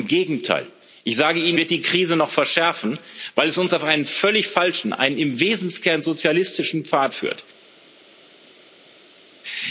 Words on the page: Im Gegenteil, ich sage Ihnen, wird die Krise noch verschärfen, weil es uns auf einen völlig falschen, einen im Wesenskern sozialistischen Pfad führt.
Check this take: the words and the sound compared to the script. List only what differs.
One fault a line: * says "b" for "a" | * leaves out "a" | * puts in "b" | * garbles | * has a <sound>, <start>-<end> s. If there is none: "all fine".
all fine